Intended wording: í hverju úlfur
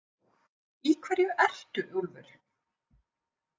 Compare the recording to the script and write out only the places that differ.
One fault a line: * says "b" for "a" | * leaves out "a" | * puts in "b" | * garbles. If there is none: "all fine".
* puts in "ertu"